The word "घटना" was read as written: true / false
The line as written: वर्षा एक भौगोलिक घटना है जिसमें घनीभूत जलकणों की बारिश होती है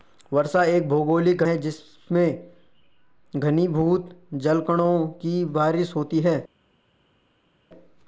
false